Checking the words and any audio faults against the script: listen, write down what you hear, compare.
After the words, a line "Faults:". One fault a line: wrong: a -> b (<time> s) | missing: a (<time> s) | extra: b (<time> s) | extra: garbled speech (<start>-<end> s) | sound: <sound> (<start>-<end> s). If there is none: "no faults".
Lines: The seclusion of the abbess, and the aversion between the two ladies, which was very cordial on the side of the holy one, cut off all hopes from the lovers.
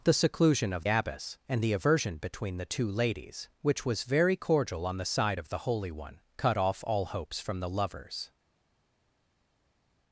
The seclusion of abbess, and the aversion between the two ladies, which was very cordial on the side of the holy one, cut off all hopes from the lovers.
Faults:
missing: the (0.8 s)